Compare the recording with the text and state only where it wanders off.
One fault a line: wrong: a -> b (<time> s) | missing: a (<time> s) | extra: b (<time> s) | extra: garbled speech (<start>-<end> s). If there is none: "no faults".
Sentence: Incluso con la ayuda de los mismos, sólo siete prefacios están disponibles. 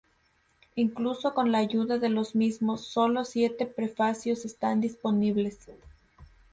no faults